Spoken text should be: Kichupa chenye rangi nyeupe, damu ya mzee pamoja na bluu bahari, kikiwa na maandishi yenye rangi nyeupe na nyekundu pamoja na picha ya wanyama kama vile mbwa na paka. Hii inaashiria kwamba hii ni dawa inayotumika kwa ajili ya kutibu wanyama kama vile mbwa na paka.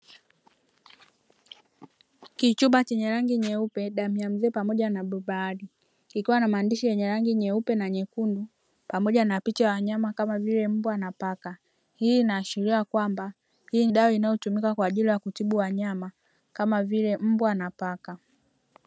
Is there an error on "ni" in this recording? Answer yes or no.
yes